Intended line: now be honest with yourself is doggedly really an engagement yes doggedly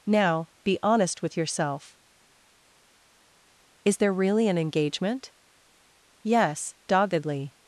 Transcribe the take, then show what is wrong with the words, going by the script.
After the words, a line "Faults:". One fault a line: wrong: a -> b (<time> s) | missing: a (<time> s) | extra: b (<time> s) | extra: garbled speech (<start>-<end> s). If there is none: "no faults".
now be honest with yourself is there really an engagement yes doggedly
Faults:
wrong: doggedly -> there (4.0 s)